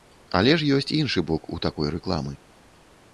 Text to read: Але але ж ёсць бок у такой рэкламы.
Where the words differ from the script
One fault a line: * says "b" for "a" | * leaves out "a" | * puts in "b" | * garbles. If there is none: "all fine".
* leaves out "але"
* puts in "іншы"